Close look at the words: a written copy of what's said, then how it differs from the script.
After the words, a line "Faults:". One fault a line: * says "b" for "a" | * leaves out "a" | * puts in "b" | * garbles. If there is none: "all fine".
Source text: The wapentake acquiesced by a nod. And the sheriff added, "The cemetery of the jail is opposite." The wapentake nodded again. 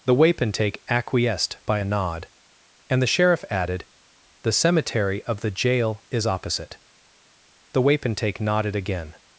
The wapentake acquiesced by a nod. And the sheriff added, "The cemetery of the jail is opposite." The wapentake nodded again.
Faults:
all fine